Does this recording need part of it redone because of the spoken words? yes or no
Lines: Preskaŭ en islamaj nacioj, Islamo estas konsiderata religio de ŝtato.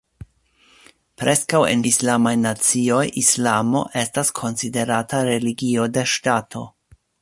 no